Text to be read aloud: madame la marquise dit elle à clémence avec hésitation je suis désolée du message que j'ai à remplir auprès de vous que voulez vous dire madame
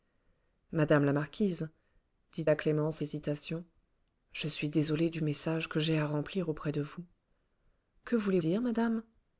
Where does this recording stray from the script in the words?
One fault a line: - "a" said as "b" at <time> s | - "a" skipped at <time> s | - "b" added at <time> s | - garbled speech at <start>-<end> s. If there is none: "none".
- "elle" skipped at 2.5 s
- "avec" skipped at 3.0 s
- "vous" skipped at 8.4 s